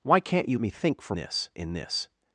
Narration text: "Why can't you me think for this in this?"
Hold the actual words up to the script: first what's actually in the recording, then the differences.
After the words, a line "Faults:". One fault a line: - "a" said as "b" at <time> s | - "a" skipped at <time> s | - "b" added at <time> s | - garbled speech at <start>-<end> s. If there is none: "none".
"Why can't you me think for this in this?"
Faults:
none